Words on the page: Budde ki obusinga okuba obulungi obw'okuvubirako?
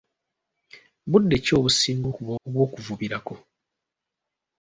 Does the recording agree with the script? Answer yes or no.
no